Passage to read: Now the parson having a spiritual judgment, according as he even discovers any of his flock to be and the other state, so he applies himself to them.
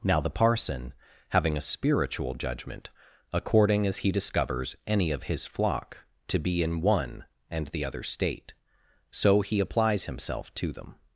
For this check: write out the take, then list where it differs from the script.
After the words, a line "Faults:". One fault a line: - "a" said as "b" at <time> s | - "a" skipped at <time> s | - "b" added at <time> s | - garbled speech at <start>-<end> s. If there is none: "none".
Now the parson having a spiritual judgment, according as he discovers any of his flock to be in one and the other state, so he applies himself to them.
Faults:
- "even" skipped at 4.1 s
- "in one" added at 6.6 s